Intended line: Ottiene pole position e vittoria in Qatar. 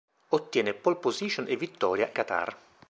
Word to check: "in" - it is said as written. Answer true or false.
false